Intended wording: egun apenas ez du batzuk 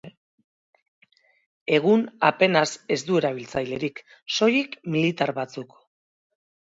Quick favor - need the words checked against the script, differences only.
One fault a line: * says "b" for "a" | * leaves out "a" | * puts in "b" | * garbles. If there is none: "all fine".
* puts in "erabiltzailerik soilik militar"